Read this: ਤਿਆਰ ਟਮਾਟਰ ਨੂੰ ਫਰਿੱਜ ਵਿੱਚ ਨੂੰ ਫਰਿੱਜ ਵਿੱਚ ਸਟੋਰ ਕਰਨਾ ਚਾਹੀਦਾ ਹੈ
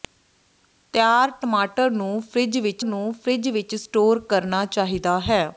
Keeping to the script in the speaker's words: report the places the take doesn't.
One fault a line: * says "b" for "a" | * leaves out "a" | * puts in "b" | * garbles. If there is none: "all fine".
all fine